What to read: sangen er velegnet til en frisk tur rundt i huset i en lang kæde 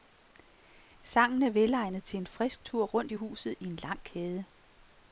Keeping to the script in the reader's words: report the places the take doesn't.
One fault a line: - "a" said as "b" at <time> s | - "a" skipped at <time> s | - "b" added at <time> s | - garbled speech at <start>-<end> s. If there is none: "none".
none